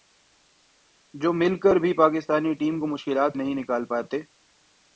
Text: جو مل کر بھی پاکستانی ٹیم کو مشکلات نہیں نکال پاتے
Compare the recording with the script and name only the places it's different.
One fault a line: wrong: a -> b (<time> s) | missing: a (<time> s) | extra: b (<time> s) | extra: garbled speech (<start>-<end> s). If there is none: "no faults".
no faults